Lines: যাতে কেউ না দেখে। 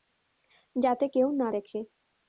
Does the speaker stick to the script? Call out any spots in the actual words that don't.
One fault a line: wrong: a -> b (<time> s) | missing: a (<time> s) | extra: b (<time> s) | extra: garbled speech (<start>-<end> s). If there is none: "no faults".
no faults